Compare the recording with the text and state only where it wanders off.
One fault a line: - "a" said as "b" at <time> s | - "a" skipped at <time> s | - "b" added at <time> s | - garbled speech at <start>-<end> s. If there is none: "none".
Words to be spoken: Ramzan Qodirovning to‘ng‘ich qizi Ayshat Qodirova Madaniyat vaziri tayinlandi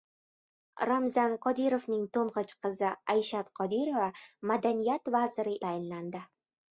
none